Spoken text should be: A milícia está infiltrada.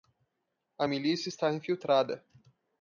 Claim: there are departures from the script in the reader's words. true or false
false